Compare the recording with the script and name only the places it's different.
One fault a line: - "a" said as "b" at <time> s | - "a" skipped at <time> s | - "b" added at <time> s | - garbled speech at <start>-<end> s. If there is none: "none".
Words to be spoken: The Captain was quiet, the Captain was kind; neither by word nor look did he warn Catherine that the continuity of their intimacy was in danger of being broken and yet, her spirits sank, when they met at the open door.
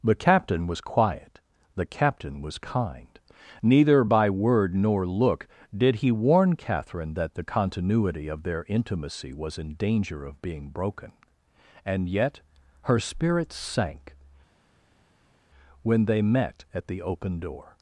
none